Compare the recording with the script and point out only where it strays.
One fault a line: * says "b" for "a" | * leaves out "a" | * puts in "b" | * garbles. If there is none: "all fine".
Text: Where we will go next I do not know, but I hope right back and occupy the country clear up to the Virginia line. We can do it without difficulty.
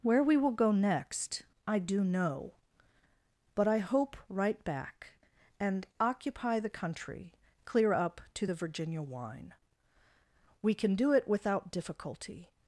* leaves out "not"
* says "wine" for "line"